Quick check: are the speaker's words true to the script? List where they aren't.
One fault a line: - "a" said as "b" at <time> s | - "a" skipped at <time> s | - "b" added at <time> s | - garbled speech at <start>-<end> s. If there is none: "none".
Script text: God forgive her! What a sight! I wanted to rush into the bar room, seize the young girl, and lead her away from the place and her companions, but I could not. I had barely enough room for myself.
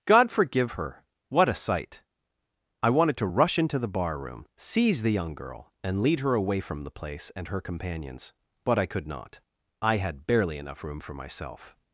none